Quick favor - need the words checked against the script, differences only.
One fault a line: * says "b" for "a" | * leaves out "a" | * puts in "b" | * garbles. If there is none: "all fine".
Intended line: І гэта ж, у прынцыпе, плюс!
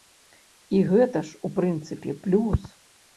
all fine